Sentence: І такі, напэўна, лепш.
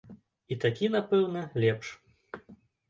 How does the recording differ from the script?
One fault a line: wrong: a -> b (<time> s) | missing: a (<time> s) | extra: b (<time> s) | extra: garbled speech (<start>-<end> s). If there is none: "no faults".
no faults